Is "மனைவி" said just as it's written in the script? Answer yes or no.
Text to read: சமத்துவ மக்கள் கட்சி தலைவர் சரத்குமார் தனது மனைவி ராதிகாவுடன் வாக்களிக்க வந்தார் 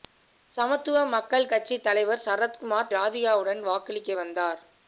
no